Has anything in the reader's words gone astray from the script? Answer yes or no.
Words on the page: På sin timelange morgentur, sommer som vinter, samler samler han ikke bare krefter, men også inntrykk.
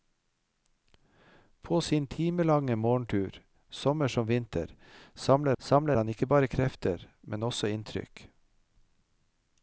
no